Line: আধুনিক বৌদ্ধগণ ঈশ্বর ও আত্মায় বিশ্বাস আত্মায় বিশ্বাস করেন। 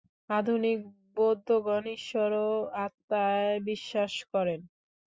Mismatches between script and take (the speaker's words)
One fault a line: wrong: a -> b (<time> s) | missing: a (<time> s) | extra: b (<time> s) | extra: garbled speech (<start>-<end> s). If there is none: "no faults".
missing: আত্মায় বিশ্বাস (4.1 s)